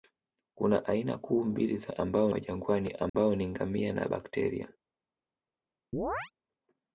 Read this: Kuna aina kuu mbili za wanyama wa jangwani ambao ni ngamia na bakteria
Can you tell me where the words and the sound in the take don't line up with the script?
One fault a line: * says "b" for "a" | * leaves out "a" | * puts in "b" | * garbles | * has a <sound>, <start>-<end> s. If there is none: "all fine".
* says "ambao" for "wanyama"
* has a dropout, 3.1-3.1 s
* has a chirp, 5.9-6.3 s